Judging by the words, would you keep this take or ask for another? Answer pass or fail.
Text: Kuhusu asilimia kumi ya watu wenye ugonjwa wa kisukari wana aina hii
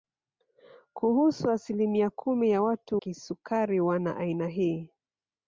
fail